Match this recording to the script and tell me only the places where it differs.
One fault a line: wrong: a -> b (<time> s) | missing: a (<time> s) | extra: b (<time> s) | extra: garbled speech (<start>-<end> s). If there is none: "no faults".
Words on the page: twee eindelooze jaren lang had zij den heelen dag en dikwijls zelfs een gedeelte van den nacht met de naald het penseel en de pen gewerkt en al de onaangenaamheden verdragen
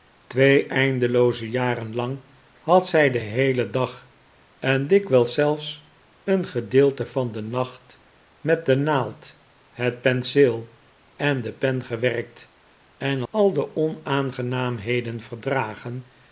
no faults